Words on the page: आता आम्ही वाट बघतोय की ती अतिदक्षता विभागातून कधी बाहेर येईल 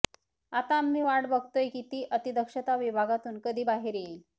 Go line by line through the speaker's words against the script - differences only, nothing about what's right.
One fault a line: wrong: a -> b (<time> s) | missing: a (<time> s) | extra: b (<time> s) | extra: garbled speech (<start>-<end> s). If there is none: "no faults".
no faults